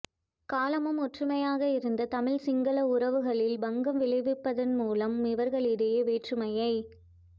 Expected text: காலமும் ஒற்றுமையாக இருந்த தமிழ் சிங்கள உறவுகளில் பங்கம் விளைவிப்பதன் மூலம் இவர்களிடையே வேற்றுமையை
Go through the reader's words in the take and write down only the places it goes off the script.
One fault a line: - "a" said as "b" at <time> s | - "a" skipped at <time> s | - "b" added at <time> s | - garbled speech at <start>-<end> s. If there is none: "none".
none